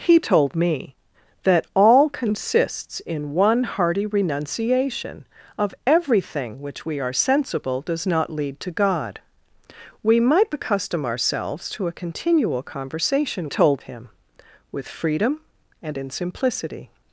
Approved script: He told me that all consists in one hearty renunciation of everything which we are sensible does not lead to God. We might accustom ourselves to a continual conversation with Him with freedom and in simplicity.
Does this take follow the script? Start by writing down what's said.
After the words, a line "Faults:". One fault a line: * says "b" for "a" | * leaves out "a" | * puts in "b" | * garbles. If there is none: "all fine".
He told me that all consists in one hearty renunciation of everything which we are sensible does not lead to God. We might accustom ourselves to a continual conversation told Him with freedom and in simplicity.
Faults:
* says "told" for "with"